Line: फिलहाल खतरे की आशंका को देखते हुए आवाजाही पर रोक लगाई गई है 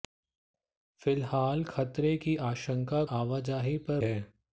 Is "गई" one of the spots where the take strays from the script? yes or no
yes